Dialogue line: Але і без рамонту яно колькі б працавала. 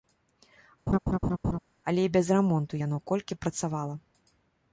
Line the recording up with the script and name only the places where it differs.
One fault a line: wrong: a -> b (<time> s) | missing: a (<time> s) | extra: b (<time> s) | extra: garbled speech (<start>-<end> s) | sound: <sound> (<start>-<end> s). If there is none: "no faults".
sound: laugh (0.9-1.6 s)